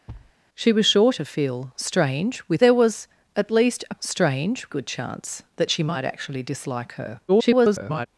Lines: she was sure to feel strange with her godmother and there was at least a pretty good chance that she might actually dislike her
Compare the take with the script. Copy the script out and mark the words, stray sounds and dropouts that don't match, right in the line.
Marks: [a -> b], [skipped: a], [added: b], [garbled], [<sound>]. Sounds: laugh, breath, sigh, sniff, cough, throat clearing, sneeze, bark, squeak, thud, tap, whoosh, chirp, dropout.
[thud] she was sure to feel strange with [skipped: her godmother and] there was at least a [pretty -> strange] good chance that she might actually dislike her [garbled]